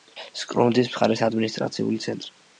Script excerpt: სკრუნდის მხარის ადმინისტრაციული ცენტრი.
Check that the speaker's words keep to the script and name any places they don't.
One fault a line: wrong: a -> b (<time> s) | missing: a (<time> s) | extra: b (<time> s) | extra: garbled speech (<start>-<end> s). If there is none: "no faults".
no faults